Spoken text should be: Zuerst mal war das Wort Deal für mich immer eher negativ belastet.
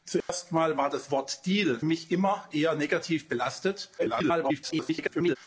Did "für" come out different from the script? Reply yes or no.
yes